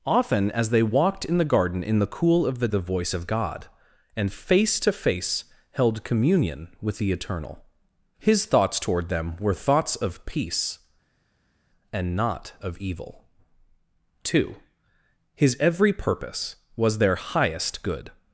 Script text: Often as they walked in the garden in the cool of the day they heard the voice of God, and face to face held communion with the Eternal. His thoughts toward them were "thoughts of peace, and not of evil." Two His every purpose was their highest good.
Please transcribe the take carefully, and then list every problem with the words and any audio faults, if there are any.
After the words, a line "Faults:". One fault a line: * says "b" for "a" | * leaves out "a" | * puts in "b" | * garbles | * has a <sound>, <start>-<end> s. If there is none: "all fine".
Often as they walked in the garden in the cool of the the voice of God, and face to face held communion with the Eternal. His thoughts toward them were "thoughts of peace, and not of evil." Two His every purpose was their highest good.
Faults:
* leaves out "day they heard"